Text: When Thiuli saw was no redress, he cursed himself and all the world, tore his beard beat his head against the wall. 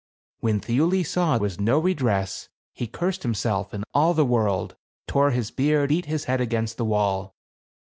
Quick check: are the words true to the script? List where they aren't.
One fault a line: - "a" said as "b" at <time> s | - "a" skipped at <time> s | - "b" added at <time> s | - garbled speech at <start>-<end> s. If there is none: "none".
none